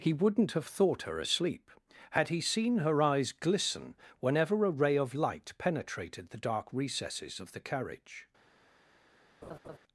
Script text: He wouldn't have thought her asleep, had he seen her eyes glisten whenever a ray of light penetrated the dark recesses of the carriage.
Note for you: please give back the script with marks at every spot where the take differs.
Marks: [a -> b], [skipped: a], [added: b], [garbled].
He wouldn't have thought her asleep, had he seen her eyes glisten whenever a ray of light penetrated the dark recesses of the carriage.